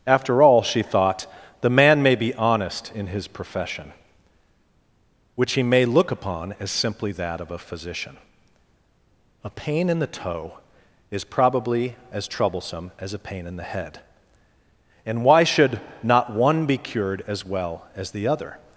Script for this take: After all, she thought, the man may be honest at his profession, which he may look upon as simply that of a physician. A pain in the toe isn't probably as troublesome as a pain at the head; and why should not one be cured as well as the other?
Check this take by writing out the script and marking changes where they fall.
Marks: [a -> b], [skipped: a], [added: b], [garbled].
After all, she thought, the man may be honest [at -> in] his profession, which he may look upon as simply that of a physician. A pain in the toe [isn't -> is] probably as troublesome as a pain [at -> in] the head; and why should not one be cured as well as the other?